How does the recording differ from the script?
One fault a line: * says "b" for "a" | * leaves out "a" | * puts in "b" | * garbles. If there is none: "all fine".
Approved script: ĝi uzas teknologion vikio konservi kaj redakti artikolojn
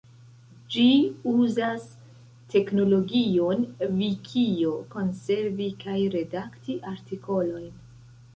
all fine